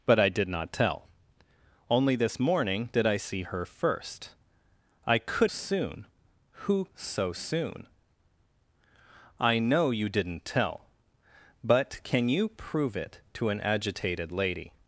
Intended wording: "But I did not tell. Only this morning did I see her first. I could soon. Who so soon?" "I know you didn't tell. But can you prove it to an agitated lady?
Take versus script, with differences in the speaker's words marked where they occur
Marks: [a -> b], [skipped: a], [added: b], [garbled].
"But I did not tell. Only this morning did I see her first. I could soon. Who so soon?" "I know you didn't tell. But can you prove it to an agitated lady?